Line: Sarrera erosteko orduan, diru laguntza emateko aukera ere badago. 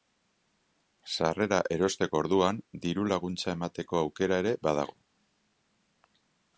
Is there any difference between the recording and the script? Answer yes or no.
no